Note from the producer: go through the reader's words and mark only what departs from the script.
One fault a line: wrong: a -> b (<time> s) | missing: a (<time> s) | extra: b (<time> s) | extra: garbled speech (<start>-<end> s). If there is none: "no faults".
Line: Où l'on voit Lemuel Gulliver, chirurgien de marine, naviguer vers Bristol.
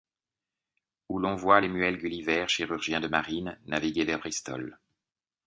no faults